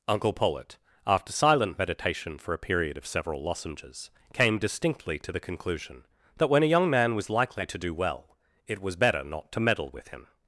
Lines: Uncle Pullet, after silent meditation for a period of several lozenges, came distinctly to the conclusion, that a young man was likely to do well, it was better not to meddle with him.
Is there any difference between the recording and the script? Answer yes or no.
yes